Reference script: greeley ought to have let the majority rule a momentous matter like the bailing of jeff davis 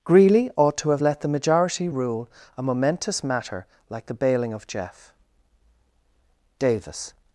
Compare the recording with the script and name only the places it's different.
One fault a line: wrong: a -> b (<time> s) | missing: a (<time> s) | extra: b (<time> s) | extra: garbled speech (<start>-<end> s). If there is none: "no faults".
no faults